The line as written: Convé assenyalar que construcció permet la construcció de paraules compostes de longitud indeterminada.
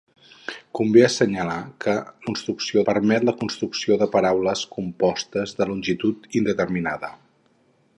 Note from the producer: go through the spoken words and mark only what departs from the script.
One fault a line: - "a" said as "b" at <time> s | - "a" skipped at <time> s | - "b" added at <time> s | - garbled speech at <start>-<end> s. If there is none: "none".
none